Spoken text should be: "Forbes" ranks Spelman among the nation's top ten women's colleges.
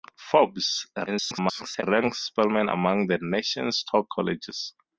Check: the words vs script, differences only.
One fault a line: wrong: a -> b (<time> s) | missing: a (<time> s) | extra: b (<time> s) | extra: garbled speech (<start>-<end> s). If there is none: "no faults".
extra: garbled speech (1.1-1.8 s)
missing: ten women's (4.1 s)